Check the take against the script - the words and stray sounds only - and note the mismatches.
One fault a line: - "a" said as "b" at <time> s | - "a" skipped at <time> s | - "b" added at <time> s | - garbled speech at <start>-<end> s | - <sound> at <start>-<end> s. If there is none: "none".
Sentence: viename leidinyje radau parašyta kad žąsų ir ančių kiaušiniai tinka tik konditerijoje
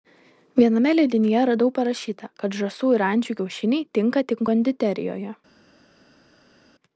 none